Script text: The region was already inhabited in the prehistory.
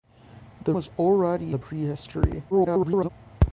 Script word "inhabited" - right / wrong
wrong